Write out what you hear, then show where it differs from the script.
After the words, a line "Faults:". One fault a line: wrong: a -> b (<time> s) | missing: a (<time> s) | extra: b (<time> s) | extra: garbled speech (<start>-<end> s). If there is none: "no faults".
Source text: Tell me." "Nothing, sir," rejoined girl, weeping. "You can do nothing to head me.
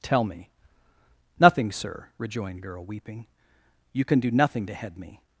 Tell me." "Nothing, sir," rejoined girl, weeping. "You can do nothing to head me.
Faults:
no faults